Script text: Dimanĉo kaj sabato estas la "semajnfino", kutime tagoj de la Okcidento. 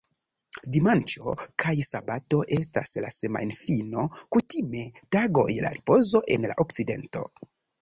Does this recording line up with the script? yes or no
no